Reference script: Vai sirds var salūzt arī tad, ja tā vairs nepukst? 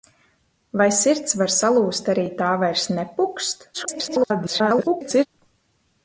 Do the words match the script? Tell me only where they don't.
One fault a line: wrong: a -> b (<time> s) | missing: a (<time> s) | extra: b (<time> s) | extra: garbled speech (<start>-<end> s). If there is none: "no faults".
missing: tad ja (2.2 s)
extra: garbled speech (3.7-5.3 s)